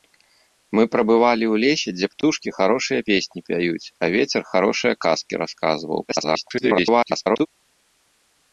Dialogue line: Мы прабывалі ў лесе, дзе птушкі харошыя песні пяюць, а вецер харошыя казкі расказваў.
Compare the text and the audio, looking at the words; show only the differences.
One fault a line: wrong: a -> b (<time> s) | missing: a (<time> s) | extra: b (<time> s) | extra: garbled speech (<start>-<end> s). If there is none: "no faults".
extra: garbled speech (6.1-7.5 s)